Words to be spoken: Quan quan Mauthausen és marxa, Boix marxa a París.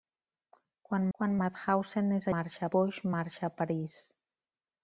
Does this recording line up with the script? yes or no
yes